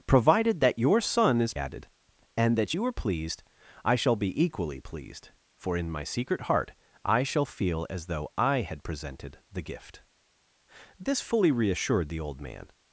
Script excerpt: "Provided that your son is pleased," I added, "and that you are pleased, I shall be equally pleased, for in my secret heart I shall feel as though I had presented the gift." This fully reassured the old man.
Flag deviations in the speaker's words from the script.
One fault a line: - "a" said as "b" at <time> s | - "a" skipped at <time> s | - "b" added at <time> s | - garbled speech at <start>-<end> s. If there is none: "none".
- "pleased I" skipped at 1.5 s